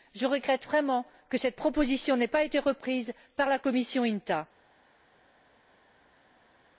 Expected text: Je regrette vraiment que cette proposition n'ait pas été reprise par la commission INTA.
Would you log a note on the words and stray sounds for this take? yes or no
no